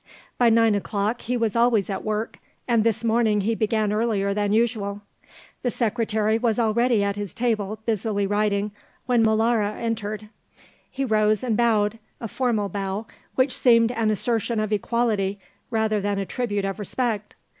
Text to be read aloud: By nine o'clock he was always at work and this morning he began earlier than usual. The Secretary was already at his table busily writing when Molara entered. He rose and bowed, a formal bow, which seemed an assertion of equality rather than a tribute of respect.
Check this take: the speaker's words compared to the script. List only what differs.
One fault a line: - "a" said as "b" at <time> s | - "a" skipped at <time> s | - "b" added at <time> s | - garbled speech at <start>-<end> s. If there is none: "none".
none